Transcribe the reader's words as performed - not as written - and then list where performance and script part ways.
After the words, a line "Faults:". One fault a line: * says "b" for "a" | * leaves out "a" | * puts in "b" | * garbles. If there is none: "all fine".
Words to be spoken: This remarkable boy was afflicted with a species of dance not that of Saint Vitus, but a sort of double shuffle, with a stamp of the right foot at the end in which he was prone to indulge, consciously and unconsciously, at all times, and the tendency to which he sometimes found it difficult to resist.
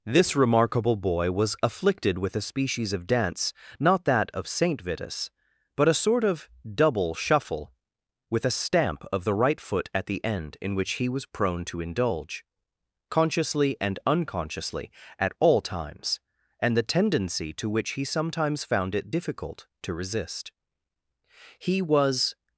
This remarkable boy was afflicted with a species of dance not that of Saint Vitus, but a sort of double shuffle, with a stamp of the right foot at the end in which he was prone to indulge, consciously and unconsciously, at all times, and the tendency to which he sometimes found it difficult to resist. He was
Faults:
* puts in "He was"